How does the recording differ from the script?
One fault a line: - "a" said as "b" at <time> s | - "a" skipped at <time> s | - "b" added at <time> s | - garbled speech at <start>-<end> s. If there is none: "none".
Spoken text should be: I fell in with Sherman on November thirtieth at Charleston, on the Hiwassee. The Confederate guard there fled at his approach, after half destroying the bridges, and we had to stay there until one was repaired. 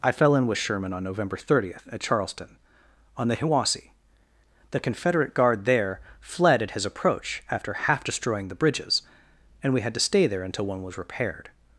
none